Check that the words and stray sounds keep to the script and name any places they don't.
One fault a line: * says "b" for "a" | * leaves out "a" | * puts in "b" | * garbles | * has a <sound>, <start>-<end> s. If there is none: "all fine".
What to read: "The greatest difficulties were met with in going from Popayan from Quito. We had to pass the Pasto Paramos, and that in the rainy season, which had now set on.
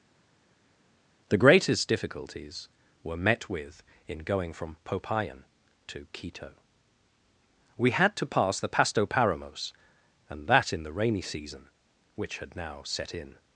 * says "to" for "from"
* says "in" for "on"